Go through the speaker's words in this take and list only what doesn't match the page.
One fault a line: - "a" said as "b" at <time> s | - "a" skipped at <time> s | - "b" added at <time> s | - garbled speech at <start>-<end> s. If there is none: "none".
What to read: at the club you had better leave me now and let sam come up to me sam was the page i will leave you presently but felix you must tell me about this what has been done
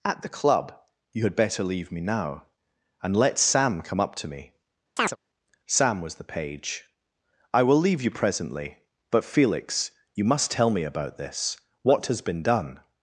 none